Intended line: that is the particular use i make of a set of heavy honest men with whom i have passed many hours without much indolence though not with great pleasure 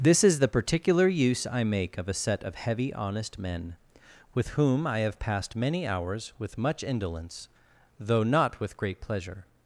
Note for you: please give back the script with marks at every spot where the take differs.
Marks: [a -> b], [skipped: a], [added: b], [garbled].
[that -> this] is the particular use i make of a set of heavy honest men with whom i have passed many hours [without -> with] much indolence though not with great pleasure